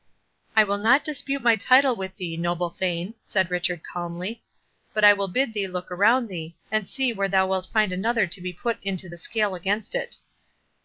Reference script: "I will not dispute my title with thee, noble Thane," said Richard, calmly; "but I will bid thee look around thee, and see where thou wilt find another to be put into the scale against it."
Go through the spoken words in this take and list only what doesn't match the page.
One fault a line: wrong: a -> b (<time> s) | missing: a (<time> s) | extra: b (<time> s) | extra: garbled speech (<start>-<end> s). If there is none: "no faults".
no faults